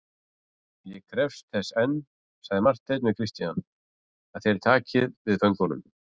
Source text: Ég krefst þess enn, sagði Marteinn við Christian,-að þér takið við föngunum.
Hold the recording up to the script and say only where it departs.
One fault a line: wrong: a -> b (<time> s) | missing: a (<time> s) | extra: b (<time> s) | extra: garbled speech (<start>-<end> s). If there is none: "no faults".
no faults